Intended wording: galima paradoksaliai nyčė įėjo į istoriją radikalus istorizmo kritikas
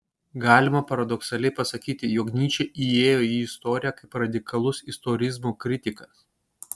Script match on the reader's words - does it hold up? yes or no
no